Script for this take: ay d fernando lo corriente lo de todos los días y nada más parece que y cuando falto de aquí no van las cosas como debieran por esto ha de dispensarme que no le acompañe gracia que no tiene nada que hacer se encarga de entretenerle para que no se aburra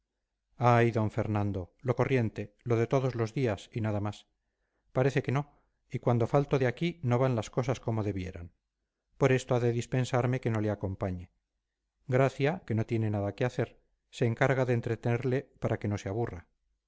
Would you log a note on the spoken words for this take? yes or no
yes